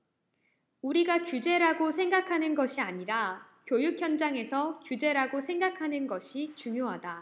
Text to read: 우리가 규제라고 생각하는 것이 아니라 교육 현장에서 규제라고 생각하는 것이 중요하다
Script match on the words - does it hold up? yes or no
yes